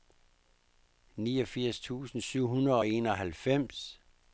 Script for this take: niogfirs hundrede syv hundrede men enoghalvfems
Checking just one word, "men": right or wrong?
wrong